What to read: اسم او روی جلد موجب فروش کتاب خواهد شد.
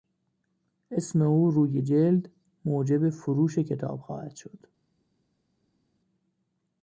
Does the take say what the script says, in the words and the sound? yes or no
yes